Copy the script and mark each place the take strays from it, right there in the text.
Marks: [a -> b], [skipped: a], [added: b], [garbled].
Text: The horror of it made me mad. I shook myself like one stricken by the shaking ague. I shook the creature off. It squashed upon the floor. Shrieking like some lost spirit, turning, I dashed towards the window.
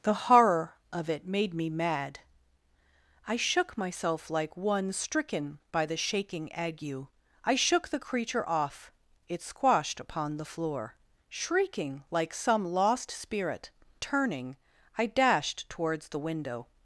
The horror of it made me mad. I shook myself like one stricken by the shaking ague. I shook the creature off. It squashed upon the floor. Shrieking like some lost spirit, turning, I dashed towards the window.